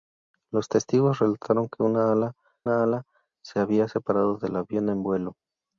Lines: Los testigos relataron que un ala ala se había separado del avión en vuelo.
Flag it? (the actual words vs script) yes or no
no